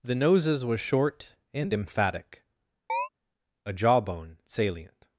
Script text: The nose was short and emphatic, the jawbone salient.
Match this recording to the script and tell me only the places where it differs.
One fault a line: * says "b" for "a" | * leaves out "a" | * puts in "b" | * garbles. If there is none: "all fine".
* says "noses" for "nose"
* says "a" for "the"